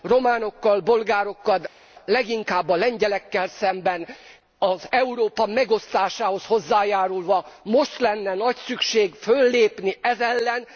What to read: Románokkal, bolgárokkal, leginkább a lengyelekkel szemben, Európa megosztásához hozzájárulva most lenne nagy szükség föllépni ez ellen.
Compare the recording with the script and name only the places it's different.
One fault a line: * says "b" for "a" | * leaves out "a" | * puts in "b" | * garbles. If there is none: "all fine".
all fine